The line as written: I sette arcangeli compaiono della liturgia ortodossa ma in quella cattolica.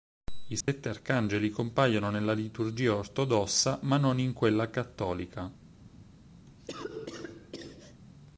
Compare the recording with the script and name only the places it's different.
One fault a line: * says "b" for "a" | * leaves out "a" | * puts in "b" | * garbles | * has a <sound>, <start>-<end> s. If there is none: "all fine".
* has a dropout, 0.6-0.7 s
* says "nella" for "della"
* puts in "non"
* has a cough, 6.5-8.0 s